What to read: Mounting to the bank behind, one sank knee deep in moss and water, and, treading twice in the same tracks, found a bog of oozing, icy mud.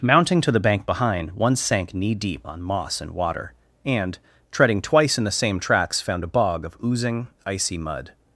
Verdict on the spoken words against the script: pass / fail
fail